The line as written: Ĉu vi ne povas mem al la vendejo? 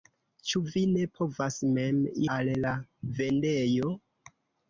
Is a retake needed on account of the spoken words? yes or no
no